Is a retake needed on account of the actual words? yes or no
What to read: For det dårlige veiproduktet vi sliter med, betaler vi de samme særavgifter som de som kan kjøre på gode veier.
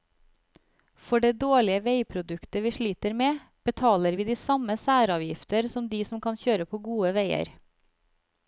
no